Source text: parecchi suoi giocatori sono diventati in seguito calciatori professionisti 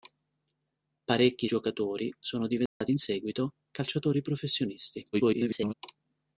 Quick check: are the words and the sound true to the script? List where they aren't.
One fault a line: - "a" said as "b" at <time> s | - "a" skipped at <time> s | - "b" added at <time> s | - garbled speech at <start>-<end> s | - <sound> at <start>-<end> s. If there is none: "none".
- "suoi" skipped at 1.5 s
- dropout at 2.7-2.8 s
- garbled speech at 5.1-5.7 s